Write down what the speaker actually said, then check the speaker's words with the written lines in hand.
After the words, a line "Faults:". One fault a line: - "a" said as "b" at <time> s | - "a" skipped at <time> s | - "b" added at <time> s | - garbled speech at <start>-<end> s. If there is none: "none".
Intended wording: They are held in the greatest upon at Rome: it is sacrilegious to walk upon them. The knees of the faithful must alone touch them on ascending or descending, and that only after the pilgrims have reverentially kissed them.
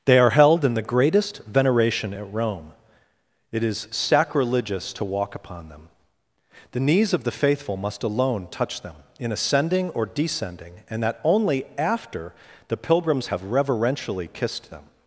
They are held in the greatest veneration at Rome: it is sacrilegious to walk upon them. The knees of the faithful must alone touch them in ascending or descending, and that only after the pilgrims have reverentially kissed them.
Faults:
- "upon" said as "veneration" at 1.4 s
- "on" said as "in" at 9.2 s